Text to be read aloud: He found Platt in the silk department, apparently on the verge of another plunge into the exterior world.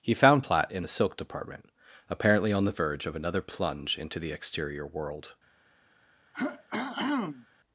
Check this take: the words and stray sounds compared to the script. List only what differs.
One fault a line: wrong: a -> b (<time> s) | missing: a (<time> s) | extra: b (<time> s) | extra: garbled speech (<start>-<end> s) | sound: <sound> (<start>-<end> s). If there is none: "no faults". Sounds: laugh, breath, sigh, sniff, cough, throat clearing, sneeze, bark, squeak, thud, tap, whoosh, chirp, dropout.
sound: throat clearing (6.3-7.5 s)